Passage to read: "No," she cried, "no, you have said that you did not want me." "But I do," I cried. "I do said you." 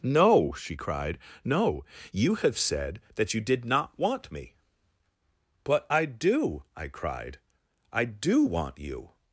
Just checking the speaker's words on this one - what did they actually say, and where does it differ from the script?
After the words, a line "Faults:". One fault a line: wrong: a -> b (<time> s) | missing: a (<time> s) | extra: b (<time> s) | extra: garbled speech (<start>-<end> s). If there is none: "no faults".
"No," she cried, "no, you have said that you did not want me." "But I do," I cried. "I do want you."
Faults:
wrong: said -> want (8.4 s)